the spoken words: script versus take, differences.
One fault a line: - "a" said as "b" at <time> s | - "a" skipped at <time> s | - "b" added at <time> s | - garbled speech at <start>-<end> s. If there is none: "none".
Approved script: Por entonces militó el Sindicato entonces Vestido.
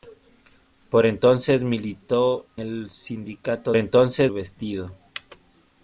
none